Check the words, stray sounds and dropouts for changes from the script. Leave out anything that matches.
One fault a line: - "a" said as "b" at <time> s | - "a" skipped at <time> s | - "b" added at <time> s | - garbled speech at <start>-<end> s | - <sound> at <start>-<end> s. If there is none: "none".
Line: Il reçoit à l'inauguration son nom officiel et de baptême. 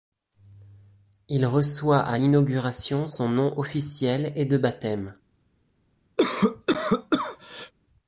- cough at 6.2-7.7 s